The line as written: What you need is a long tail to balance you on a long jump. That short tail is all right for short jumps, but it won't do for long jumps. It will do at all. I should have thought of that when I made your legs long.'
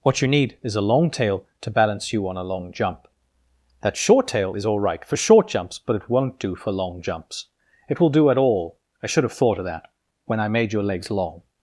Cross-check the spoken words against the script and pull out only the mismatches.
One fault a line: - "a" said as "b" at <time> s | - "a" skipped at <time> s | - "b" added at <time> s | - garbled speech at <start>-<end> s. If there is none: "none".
none